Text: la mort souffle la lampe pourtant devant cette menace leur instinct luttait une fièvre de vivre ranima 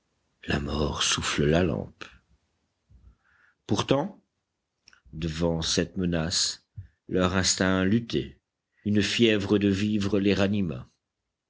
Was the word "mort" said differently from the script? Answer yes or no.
no